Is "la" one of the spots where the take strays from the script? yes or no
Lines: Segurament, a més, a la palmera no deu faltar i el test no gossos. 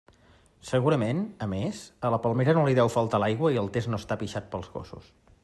no